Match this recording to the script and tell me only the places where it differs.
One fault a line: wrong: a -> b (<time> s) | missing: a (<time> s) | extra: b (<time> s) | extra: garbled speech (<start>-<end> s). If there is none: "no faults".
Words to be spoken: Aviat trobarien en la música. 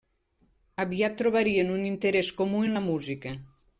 extra: un interès comú (1.8 s)